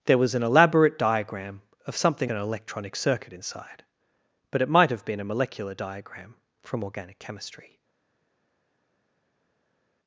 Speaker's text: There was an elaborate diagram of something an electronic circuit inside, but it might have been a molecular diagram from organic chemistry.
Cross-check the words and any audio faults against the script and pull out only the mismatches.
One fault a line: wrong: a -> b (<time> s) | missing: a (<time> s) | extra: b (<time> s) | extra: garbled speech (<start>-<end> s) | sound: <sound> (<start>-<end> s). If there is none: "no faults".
no faults